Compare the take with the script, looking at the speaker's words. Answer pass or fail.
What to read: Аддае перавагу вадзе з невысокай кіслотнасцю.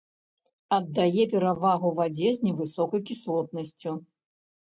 pass